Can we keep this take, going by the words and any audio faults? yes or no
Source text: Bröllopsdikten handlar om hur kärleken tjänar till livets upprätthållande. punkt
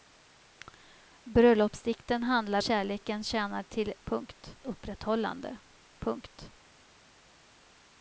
no